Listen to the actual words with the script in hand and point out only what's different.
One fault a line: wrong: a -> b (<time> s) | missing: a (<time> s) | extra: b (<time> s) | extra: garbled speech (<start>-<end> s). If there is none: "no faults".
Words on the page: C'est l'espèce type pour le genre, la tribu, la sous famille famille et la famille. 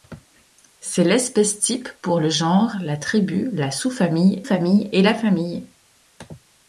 no faults